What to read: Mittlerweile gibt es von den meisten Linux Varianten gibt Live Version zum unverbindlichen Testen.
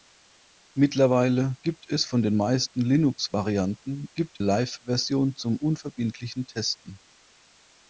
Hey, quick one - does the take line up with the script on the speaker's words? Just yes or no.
yes